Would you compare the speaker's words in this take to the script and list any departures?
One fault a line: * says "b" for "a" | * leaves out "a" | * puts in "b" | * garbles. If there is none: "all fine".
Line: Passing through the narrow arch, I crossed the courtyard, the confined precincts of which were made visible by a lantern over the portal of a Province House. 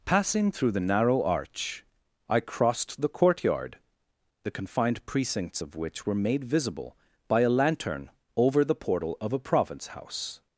all fine